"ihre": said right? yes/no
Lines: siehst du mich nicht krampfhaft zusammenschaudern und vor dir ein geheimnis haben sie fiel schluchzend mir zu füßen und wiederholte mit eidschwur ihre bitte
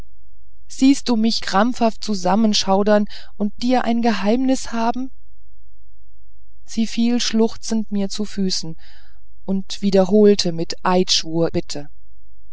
no